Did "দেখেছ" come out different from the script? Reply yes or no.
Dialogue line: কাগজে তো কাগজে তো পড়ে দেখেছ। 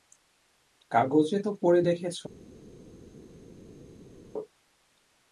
no